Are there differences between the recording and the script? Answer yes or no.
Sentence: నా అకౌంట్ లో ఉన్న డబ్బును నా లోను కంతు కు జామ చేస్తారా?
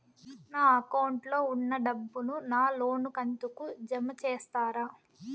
no